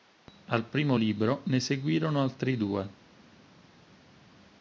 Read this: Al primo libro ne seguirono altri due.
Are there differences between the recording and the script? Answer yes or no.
no